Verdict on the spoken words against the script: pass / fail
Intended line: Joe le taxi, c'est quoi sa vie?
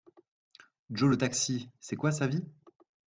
pass